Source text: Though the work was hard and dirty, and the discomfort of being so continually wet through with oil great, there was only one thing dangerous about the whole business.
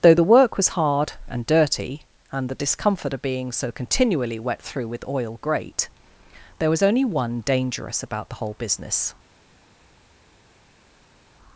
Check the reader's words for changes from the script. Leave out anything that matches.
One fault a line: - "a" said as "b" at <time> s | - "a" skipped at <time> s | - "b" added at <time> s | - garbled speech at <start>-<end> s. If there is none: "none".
- "thing" skipped at 7.4 s